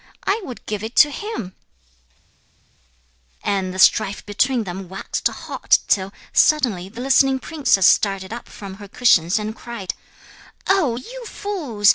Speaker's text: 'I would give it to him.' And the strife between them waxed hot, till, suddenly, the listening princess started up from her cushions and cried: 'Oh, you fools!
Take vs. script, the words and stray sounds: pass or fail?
pass